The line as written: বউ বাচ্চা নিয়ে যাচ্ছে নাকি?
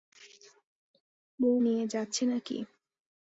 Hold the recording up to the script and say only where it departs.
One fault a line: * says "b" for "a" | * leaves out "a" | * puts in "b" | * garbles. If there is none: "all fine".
* leaves out "বাচ্চা"